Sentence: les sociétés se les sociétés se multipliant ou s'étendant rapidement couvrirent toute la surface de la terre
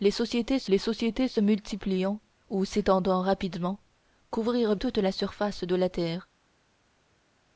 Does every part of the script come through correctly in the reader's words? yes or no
yes